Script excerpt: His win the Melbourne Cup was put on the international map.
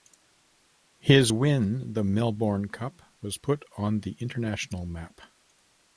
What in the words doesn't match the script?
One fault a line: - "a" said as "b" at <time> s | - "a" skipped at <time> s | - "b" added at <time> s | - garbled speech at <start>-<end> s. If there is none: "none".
none